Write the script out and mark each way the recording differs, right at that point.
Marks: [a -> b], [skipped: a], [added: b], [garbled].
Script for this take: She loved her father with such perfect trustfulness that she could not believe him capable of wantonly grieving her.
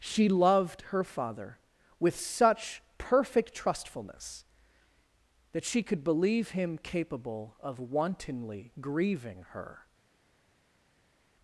She loved her father with such perfect trustfulness that she could [skipped: not] believe him capable of wantonly grieving her.